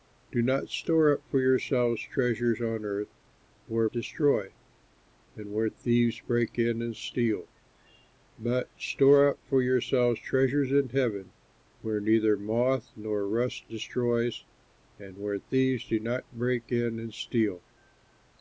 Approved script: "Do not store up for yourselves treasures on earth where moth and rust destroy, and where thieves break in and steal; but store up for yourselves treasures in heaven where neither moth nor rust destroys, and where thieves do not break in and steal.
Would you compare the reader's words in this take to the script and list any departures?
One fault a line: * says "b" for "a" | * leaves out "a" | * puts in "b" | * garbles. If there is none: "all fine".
* leaves out "moth and rust"